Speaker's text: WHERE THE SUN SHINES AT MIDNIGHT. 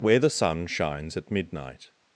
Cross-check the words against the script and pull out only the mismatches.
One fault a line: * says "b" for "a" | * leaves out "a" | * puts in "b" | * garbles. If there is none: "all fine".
all fine